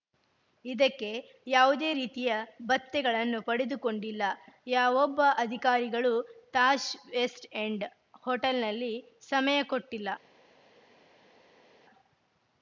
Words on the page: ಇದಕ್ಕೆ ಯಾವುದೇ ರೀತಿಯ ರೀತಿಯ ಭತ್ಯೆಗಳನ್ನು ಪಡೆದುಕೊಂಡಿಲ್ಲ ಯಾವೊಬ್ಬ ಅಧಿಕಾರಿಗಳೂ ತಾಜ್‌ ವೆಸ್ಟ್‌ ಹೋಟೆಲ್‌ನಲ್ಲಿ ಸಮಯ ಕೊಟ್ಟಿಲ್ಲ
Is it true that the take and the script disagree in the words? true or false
true